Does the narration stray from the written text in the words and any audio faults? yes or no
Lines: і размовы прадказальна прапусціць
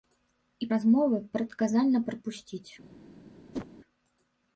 yes